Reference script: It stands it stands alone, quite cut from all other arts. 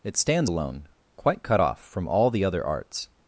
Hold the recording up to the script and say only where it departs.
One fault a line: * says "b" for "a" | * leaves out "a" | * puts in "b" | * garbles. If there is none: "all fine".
* leaves out "it stands"
* puts in "off"
* puts in "the"